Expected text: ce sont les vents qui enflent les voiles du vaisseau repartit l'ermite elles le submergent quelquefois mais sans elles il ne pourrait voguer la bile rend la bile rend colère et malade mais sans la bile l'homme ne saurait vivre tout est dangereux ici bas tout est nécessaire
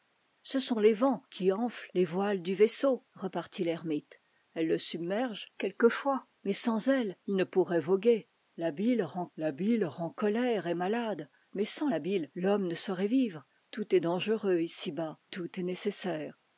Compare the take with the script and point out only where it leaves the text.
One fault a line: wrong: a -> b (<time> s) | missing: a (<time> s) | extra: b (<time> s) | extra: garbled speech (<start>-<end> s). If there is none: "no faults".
no faults